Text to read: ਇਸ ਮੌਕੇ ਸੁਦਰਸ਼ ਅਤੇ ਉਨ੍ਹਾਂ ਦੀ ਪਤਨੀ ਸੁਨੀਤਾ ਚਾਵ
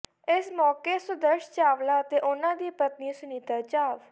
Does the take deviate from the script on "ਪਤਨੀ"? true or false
false